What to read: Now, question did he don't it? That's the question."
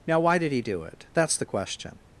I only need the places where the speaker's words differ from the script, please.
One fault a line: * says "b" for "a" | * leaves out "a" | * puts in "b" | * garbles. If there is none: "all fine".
* says "why" for "question"
* says "do" for "don't"